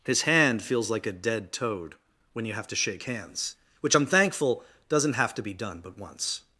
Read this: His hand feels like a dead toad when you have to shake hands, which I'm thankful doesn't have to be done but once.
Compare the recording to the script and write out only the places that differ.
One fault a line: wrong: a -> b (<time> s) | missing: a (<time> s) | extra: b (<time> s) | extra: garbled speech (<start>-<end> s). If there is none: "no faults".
no faults